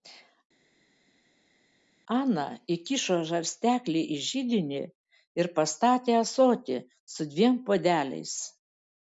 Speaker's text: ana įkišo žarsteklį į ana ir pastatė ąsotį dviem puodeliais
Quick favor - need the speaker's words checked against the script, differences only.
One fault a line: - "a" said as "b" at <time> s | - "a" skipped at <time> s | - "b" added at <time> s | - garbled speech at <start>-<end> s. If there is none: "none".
- "ana" said as "židinį" at 4.3 s
- "su" added at 7.2 s